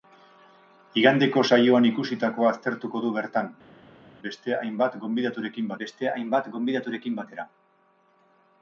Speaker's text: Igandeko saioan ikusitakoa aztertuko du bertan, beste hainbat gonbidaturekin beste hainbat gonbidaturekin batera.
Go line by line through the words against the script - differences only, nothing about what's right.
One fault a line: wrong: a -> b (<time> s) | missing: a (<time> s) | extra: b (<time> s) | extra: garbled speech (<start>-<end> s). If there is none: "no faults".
no faults